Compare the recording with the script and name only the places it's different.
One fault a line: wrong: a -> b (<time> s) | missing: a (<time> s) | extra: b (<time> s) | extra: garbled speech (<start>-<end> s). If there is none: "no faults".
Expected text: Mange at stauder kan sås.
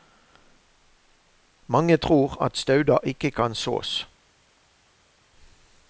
extra: tror (2.0 s)
extra: ikke (3.0 s)